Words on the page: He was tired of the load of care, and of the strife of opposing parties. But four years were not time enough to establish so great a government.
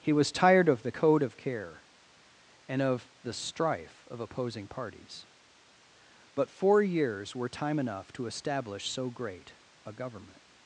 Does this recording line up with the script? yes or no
no